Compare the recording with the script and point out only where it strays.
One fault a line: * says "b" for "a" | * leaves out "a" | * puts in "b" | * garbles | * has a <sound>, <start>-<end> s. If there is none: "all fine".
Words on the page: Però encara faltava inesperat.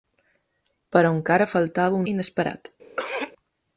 * has a throat clearing, 3.0-3.3 s